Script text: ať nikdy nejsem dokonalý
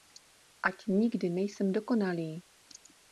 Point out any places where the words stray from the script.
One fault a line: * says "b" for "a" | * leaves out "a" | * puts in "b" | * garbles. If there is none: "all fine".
all fine